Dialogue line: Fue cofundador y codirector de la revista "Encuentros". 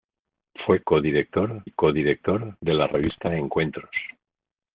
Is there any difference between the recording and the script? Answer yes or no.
yes